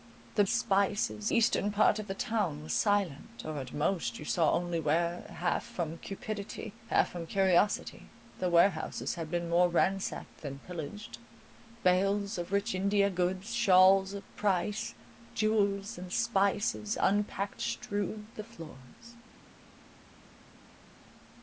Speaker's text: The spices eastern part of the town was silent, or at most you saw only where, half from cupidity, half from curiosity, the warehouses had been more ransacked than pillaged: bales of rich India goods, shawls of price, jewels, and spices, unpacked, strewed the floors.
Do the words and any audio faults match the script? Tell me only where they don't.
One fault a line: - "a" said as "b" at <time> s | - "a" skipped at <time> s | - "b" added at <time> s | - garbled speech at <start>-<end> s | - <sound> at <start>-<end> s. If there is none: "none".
none